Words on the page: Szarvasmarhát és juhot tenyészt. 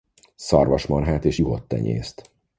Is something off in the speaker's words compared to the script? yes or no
no